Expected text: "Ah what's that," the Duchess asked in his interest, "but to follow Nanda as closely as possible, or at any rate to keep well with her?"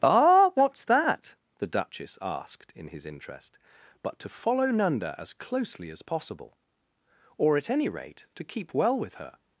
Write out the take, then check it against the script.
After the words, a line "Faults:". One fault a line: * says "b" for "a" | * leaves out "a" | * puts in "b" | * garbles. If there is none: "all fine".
"Ah what's that," the Duchess asked in his interest, "but to follow Nanda as closely as possible, or at any rate to keep well with her?"
Faults:
all fine